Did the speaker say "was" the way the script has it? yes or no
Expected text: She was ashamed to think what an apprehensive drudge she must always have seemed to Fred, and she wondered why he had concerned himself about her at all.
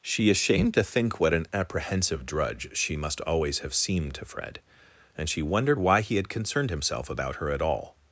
no